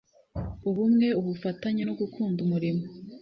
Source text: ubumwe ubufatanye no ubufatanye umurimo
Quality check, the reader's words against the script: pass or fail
fail